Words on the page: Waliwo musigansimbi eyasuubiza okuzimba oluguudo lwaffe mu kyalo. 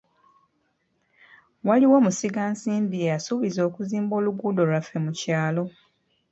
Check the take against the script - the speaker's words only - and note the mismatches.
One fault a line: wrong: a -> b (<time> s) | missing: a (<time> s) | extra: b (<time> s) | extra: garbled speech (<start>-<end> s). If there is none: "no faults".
no faults